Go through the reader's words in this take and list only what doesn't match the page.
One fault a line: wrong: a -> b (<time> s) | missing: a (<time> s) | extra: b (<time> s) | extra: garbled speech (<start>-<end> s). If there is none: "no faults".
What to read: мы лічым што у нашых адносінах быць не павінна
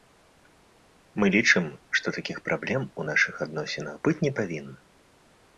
extra: такіх праблем (2.2 s)